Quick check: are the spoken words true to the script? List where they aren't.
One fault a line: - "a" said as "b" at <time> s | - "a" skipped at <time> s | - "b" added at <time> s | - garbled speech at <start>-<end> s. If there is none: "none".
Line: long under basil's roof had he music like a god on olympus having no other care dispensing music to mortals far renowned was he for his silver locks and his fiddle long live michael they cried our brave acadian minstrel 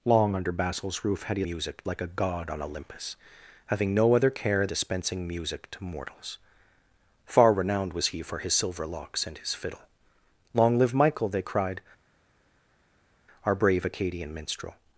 none